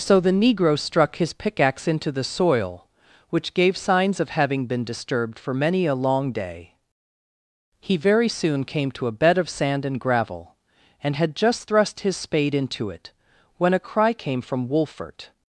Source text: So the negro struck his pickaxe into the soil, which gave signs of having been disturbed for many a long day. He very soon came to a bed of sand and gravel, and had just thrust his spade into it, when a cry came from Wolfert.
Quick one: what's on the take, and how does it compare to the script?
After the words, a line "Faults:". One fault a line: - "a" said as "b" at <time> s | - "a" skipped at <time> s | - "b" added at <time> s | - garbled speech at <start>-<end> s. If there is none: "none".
So the negro struck his pickaxe into the soil, which gave signs of having been disturbed for many a long day. He very soon came to a bed of sand and gravel, and had just thrust his spade into it, when a cry came from Wolfert.
Faults:
none